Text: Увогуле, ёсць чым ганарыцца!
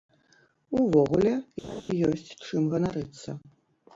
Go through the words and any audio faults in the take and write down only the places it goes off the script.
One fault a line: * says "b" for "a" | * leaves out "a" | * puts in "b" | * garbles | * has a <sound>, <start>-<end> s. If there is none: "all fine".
* has a laugh, 1.6-1.8 s